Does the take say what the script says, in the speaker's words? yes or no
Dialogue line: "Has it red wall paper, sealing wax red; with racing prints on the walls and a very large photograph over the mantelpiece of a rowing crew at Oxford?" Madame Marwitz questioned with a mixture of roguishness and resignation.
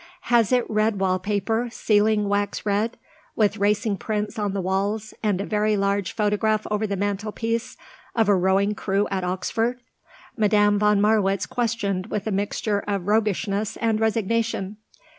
no